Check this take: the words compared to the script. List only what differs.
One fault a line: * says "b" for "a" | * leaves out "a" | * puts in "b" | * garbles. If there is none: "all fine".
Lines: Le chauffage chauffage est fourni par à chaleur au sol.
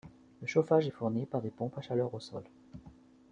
* leaves out "chauffage"
* puts in "des pompes"